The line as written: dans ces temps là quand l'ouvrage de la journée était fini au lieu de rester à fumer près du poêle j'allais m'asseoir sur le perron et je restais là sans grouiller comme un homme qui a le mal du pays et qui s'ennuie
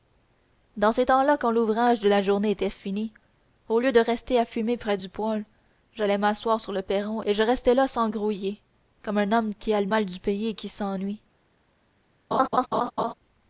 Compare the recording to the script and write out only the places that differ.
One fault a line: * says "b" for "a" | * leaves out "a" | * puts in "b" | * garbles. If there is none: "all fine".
all fine